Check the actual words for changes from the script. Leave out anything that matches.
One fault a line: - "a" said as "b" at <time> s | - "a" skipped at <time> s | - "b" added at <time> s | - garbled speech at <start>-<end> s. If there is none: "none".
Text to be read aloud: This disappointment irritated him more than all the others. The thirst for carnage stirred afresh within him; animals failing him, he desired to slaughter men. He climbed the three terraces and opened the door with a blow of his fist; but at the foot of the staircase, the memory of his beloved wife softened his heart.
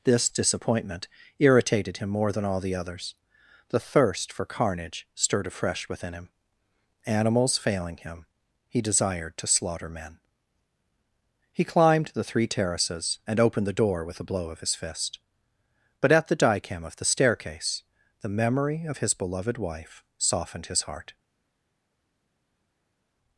- "foot" said as "dicam" at 16.4 s